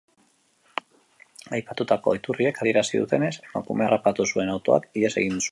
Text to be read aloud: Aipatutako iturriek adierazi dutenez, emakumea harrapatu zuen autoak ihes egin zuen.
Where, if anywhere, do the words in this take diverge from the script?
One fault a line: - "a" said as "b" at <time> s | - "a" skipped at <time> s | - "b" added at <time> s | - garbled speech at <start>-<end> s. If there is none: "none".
none